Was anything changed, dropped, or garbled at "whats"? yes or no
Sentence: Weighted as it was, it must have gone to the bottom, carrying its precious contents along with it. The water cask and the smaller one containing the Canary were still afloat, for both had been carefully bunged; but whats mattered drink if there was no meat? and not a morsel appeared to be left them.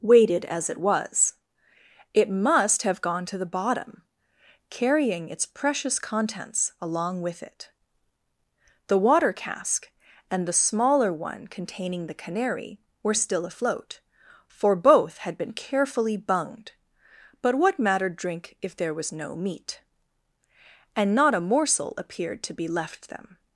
yes